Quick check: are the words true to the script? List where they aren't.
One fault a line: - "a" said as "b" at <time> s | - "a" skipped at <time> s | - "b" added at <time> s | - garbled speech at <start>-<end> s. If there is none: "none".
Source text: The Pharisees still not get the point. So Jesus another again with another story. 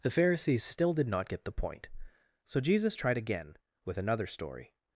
- "did" added at 0.9 s
- "another" said as "tried" at 3.0 s